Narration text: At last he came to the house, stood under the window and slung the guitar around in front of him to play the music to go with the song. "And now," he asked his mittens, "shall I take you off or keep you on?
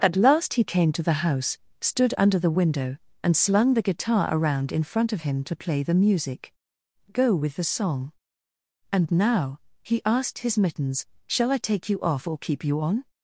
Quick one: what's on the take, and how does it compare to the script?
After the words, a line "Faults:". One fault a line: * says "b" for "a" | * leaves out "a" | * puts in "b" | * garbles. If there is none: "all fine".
At last he came to the house, stood under the window and slung the guitar around in front of him to play the music go with the song. "And now," he asked his mittens, "shall I take you off or keep you on?
Faults:
* leaves out "to"